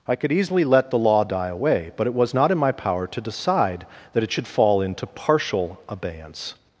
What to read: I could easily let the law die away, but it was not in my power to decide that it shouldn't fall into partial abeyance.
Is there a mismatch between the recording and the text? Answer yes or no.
yes